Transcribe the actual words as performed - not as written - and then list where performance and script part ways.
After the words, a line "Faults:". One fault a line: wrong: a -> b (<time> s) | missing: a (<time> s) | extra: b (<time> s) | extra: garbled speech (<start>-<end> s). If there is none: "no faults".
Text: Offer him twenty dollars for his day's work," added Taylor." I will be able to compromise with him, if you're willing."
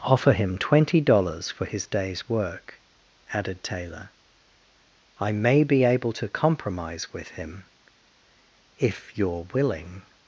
Offer him twenty dollars for his day's work," added Taylor." I may be able to compromise with him, if you're willing."
Faults:
wrong: will -> may (5.3 s)